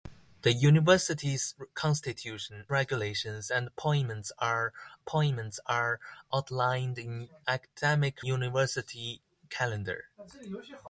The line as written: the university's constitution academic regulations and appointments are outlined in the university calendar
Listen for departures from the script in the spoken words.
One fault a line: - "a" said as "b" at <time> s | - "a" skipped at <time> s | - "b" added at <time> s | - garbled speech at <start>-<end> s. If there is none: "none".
- "academic" skipped at 2.6 s
- "appointments are" added at 5.0 s
- "the" said as "academic" at 7.5 s